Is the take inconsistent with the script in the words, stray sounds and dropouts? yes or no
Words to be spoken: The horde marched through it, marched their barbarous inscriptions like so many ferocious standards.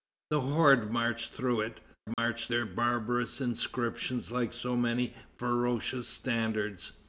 yes